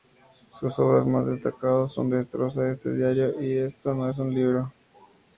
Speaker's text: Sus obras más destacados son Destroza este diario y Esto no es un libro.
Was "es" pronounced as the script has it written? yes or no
yes